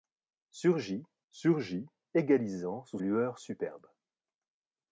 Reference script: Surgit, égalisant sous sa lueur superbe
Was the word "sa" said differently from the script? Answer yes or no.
yes